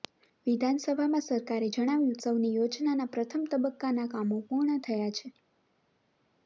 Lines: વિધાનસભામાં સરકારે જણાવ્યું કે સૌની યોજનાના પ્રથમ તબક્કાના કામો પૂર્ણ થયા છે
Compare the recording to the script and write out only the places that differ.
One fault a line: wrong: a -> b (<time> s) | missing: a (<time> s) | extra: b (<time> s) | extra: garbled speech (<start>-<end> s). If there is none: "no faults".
missing: કે (2.1 s)